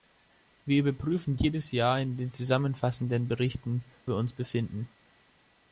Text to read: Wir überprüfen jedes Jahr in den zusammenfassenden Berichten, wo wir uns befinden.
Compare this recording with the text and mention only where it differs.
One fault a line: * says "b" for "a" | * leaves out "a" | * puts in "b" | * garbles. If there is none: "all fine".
* leaves out "wo"